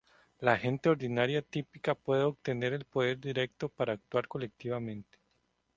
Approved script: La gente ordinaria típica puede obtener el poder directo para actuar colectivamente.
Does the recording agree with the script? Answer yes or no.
yes